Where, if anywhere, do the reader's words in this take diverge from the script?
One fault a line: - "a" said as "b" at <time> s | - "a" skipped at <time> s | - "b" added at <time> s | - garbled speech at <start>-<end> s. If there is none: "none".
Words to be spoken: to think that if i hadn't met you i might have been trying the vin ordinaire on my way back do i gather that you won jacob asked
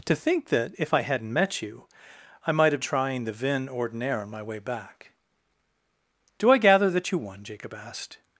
- "been" skipped at 2.8 s